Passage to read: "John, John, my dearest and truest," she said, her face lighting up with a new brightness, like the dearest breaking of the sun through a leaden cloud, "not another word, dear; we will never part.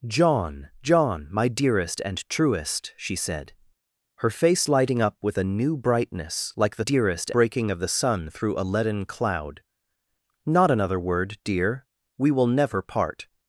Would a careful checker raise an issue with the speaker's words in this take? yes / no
no